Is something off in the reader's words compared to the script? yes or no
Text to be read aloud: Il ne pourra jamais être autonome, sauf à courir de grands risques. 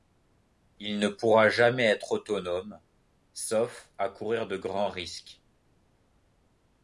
no